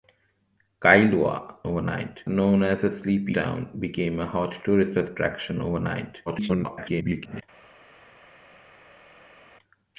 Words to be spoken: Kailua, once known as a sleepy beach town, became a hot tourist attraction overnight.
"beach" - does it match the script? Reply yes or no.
no